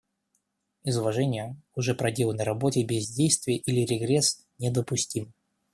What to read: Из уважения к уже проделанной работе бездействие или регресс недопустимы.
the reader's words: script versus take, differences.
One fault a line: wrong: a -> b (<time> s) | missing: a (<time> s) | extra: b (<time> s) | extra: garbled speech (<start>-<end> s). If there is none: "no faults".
no faults